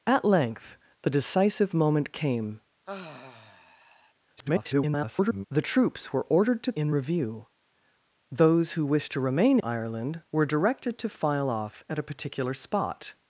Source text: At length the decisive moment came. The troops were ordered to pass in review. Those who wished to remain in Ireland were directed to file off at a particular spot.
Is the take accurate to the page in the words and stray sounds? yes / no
no